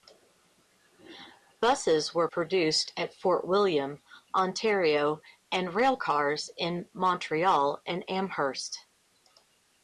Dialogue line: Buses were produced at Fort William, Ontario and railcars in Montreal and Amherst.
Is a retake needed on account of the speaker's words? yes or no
no